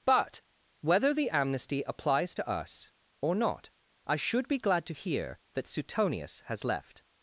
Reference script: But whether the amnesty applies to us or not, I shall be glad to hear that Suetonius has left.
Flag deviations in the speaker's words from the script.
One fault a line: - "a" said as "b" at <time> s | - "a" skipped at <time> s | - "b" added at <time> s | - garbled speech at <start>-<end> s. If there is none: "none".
- "shall" said as "should" at 4.2 s